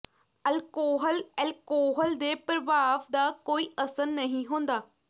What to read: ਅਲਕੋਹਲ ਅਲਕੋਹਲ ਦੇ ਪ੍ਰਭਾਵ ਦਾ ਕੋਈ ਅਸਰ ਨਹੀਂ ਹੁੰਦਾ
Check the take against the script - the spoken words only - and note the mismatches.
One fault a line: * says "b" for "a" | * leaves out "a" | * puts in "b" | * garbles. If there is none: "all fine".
all fine